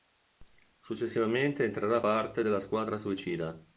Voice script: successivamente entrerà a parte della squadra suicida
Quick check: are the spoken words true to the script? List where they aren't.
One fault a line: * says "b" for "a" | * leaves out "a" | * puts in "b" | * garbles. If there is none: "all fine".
all fine